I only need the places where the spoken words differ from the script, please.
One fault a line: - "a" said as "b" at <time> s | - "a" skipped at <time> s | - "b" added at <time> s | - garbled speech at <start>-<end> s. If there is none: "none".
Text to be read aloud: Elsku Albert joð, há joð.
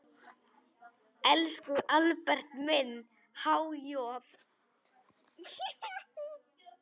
- "joð" said as "minn" at 2.7 s